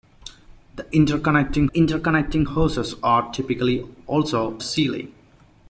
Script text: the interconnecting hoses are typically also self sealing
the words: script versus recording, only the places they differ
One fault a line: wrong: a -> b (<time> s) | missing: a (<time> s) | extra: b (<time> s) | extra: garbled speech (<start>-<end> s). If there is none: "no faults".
extra: interconnecting (1.7 s)
missing: self (4.6 s)